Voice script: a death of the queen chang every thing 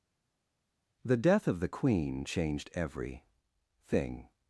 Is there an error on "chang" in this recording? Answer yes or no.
yes